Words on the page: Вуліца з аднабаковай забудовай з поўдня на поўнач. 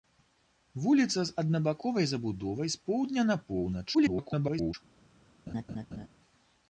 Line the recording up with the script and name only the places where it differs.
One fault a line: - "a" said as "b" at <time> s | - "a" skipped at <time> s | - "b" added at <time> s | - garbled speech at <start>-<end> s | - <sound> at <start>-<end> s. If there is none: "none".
- garbled speech at 3.9-4.7 s
- laugh at 5.5-6.1 s